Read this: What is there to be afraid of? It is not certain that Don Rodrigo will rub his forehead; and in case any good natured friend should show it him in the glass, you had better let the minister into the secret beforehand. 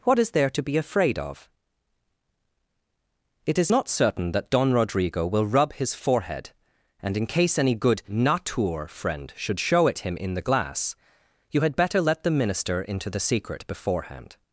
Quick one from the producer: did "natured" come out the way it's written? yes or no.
no